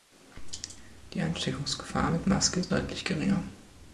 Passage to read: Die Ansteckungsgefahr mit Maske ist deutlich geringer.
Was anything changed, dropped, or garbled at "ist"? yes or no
no